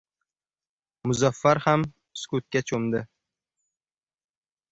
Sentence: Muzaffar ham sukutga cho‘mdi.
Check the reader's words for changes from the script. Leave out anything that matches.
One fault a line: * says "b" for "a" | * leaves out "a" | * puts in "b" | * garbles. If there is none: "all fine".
all fine